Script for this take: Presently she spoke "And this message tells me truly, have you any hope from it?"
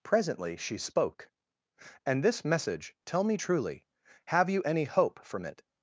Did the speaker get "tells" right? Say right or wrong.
wrong